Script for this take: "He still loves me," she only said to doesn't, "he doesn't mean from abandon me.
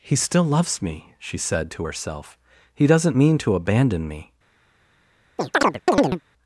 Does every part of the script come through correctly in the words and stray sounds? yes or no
no